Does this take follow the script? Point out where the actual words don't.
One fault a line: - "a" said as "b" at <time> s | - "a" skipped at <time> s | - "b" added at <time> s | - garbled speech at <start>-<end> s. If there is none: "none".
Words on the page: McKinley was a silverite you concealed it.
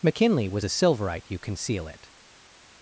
- "concealed" said as "conceal" at 1.4 s